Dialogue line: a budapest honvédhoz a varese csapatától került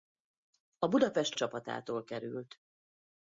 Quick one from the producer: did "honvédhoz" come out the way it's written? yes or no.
no